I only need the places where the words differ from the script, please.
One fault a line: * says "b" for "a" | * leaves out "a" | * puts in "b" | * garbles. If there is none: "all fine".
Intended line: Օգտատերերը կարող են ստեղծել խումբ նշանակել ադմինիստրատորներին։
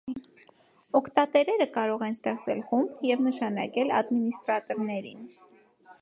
* puts in "և"